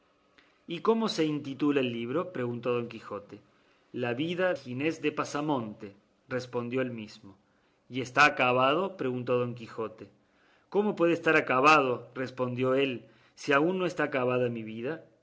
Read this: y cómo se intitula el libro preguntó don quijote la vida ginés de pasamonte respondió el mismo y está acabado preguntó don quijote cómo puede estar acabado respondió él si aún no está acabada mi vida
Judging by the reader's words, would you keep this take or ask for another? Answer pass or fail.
pass